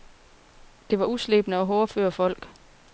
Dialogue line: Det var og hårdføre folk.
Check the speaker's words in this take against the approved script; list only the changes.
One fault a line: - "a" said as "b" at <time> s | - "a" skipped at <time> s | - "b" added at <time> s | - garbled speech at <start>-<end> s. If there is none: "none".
- "uslebne" added at 1.0 s